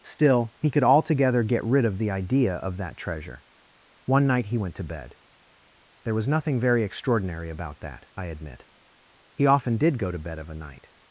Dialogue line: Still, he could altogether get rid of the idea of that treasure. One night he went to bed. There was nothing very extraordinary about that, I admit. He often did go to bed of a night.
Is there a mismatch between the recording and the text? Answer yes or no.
no